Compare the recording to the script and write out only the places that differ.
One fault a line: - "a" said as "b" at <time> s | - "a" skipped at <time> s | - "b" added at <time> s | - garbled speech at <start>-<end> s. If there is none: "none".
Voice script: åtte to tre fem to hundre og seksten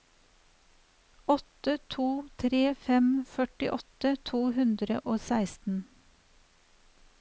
- "førtiåtte" added at 3.3 s